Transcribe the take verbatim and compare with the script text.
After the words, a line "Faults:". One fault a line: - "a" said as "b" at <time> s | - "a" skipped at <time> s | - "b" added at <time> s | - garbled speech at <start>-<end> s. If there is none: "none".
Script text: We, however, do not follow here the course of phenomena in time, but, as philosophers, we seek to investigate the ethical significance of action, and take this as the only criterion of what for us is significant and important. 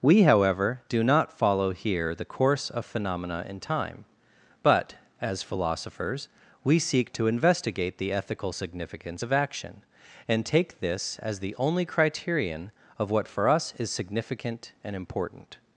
We, however, do not follow here the course of phenomena in time, but, as philosophers, we seek to investigate the ethical significance of action, and take this as the only criterion of what for us is significant and important.
Faults:
none